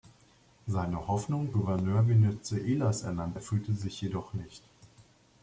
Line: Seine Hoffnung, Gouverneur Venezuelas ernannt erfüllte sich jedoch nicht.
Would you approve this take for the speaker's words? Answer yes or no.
yes